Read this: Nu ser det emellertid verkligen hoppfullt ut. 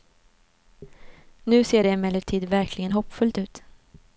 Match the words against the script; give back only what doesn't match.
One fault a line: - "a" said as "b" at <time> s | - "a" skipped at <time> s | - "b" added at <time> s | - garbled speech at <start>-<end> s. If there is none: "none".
none